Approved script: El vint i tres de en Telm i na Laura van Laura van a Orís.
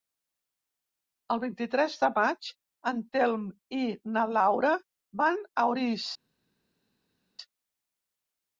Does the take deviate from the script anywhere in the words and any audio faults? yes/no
yes